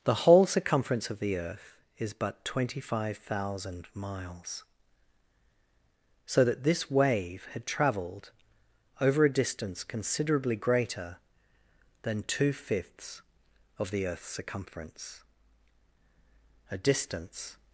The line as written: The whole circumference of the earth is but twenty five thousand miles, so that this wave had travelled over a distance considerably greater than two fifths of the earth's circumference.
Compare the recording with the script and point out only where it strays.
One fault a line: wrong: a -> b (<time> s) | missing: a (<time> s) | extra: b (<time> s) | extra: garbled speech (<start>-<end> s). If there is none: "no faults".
extra: A distance (16.7 s)